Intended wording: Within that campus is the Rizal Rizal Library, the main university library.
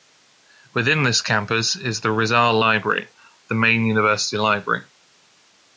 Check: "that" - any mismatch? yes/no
yes